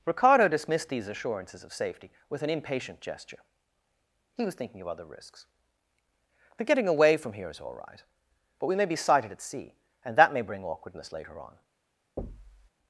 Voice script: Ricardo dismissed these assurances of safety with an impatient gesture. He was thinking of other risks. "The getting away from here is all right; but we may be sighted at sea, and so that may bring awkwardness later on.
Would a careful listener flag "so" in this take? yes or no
yes